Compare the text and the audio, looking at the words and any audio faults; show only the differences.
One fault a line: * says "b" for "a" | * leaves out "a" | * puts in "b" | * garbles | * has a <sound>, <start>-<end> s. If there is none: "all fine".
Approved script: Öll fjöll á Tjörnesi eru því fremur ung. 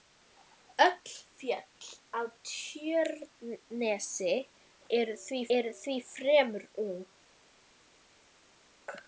* puts in "eru því"